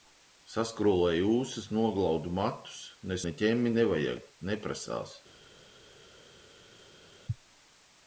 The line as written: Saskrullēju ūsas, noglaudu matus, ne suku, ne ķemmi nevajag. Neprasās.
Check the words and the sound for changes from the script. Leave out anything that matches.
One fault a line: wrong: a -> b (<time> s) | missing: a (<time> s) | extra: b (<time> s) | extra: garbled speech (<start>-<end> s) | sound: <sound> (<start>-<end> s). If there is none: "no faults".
missing: suku (3.2 s)